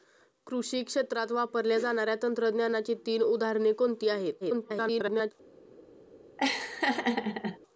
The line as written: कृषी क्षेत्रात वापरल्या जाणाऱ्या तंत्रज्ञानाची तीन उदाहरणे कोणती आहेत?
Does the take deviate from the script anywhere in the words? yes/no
yes